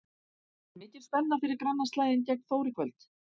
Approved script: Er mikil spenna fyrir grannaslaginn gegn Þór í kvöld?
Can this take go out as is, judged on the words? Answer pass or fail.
pass